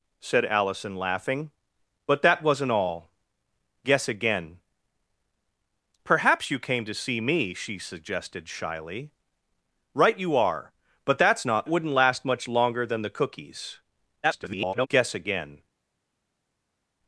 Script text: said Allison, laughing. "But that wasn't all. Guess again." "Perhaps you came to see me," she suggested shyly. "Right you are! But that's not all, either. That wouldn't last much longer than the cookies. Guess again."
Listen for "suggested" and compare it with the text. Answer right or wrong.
right